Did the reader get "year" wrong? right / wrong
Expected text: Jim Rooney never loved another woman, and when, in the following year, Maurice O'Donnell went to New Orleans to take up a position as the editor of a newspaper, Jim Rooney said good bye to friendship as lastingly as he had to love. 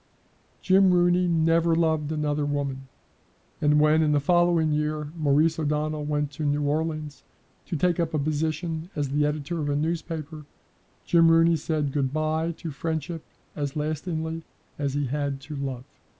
right